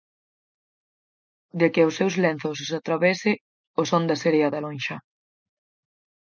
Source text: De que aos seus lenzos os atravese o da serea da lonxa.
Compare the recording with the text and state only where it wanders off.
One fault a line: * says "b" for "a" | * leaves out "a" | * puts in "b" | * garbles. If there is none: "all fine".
* puts in "son"